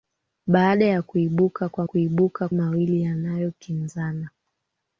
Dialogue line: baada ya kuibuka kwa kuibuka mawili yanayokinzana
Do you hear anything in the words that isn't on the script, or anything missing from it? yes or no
no